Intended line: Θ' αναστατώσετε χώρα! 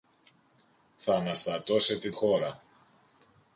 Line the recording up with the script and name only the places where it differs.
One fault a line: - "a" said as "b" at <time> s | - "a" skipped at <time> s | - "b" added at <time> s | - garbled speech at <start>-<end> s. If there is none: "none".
none